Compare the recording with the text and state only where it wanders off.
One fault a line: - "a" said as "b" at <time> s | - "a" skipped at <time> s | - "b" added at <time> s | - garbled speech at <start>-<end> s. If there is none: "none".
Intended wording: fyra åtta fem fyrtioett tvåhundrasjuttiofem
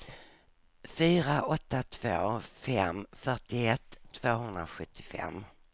- "två" added at 1.8 s